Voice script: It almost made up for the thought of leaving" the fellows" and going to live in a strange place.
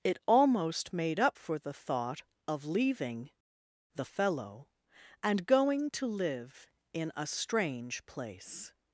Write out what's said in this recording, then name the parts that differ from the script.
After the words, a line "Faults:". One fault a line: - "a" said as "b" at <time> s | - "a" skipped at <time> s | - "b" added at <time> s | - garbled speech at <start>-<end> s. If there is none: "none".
It almost made up for the thought of leaving" the fellow" and going to live in a strange place.
Faults:
- "fellows" said as "fellow" at 4.0 s